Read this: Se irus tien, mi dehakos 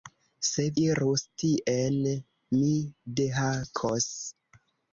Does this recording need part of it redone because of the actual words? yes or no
no